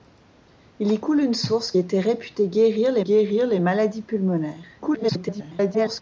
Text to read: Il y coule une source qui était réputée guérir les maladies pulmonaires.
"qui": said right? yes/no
no